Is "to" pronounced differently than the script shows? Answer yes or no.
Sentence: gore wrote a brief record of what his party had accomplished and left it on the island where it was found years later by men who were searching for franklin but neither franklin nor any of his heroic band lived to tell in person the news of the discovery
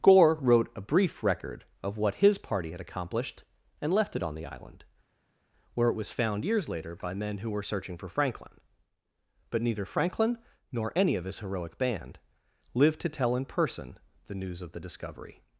no